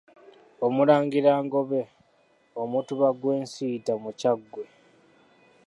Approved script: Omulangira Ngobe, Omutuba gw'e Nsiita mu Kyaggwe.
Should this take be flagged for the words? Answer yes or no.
no